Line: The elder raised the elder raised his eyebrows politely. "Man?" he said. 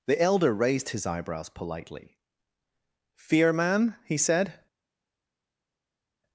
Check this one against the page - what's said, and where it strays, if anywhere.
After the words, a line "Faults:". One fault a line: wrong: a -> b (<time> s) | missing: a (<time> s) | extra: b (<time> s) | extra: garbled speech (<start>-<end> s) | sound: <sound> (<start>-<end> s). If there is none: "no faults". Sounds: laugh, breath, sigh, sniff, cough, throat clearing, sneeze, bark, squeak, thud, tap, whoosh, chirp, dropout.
The elder raised his eyebrows politely. "Fear man?" he said.
Faults:
missing: the elder raised (0.9 s)
extra: Fear (3.2 s)